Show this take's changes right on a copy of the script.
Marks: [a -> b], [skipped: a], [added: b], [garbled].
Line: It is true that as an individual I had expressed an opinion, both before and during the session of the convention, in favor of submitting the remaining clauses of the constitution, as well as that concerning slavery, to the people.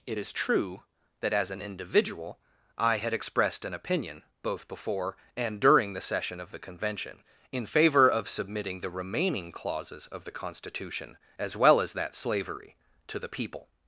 It is true that as an individual I had expressed an opinion, both before and during the session of the convention, in favor of submitting the remaining clauses of the constitution, as well as that [skipped: concerning] slavery, to the people.